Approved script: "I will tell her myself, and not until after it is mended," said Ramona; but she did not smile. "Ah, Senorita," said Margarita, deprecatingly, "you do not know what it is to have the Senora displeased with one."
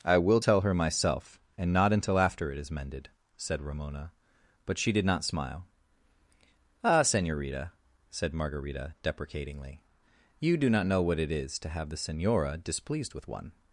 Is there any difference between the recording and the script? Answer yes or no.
no